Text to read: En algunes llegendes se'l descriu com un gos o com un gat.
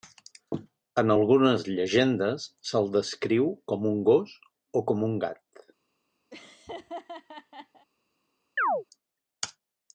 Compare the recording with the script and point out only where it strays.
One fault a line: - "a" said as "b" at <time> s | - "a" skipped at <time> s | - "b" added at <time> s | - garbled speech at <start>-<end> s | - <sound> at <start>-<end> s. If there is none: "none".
- laugh at 6.3-7.9 s
- chirp at 8.6-8.8 s